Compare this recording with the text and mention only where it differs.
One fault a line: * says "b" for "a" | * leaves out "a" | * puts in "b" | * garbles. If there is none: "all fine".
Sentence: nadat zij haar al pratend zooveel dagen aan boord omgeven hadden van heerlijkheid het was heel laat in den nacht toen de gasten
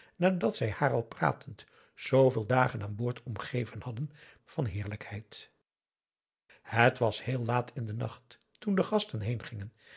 all fine